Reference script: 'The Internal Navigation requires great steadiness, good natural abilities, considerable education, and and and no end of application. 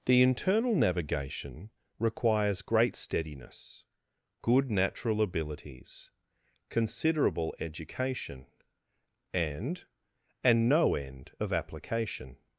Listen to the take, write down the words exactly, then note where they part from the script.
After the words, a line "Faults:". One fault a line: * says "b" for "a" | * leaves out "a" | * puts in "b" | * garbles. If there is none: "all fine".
'The Internal Navigation requires great steadiness, good natural abilities, considerable education, and and no end of application.
Faults:
* leaves out "and"